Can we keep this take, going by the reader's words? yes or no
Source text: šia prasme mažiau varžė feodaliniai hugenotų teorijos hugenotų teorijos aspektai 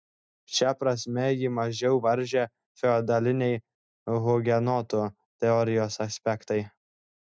no